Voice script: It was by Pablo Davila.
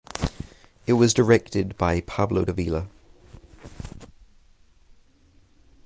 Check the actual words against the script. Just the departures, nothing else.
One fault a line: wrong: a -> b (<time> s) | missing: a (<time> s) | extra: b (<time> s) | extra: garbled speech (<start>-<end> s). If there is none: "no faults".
extra: directed (1.1 s)